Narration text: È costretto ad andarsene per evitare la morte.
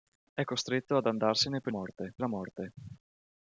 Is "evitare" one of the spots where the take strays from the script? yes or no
yes